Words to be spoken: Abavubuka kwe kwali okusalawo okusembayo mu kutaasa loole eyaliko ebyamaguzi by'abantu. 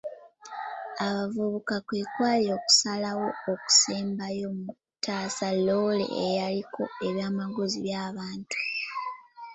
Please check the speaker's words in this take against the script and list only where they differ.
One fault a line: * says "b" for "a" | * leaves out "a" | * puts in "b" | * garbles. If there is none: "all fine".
all fine